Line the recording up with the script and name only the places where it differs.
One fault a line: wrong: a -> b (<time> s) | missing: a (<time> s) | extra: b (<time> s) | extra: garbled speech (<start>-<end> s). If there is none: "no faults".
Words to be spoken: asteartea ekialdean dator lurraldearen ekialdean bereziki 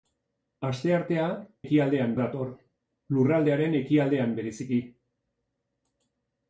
no faults